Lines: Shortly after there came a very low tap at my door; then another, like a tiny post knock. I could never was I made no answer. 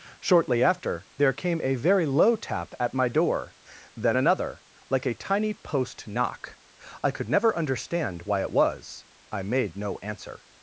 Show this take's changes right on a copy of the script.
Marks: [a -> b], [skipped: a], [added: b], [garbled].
Shortly after there came a very low tap at my door; then another, like a tiny post knock. I could never [added: understand why it] was I made no answer.